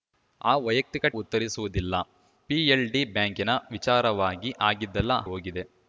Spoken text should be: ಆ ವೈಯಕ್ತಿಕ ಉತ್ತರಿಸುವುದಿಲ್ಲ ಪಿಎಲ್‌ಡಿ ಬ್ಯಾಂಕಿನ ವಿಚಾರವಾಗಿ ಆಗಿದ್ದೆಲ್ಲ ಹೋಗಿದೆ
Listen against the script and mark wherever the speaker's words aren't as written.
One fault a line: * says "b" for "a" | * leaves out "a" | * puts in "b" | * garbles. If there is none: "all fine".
all fine